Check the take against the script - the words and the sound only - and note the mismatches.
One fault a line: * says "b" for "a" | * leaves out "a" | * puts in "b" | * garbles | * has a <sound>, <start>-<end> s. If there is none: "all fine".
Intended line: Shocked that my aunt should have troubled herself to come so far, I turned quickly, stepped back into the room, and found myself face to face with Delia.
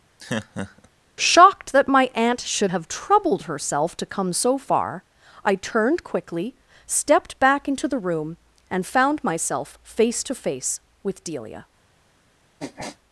* has a laugh, 0.2-0.9 s
* has a sniff, 12.6-13.0 s